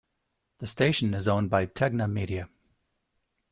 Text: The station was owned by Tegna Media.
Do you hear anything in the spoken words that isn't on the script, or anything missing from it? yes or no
yes